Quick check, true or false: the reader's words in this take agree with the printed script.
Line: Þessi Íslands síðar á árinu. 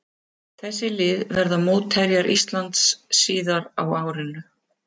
false